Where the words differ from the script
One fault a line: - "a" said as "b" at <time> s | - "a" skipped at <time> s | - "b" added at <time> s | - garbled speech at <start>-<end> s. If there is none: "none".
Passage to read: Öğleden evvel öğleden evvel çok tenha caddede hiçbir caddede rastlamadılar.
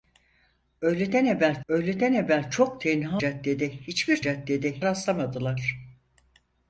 none